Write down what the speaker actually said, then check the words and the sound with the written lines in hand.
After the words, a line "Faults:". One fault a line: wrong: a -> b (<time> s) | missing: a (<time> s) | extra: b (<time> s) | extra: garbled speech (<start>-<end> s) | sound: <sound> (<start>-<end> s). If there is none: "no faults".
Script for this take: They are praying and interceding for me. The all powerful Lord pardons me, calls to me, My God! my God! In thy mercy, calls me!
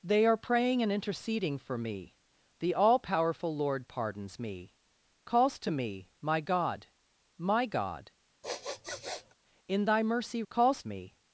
They are praying and interceding for me. The all powerful Lord pardons me, calls to me, My God! my God! In thy mercy, calls me!
Faults:
sound: sniff (8.4-9.3 s)